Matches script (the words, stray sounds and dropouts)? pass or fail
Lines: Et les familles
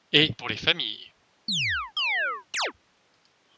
fail